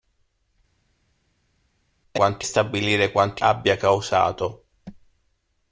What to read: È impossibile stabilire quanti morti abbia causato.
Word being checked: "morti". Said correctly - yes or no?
no